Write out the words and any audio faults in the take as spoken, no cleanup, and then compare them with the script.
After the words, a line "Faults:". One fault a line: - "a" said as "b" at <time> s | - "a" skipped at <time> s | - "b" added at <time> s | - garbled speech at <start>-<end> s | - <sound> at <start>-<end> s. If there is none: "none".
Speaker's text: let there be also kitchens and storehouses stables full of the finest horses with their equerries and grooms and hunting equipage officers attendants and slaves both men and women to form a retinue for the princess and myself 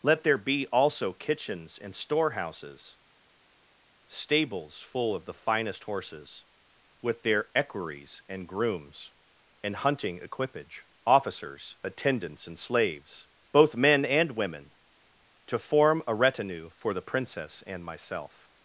let there be also kitchens and storehouses stables full of the finest horses with their equerries and grooms and hunting equipage officers attendants and slaves both men and women to form a retinue for the princess and myself
Faults:
none